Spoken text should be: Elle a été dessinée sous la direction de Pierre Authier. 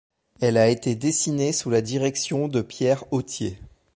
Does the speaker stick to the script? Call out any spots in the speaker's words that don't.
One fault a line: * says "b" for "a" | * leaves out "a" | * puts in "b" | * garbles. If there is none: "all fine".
all fine